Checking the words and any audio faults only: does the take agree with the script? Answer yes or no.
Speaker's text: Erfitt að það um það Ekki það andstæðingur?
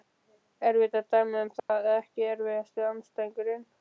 no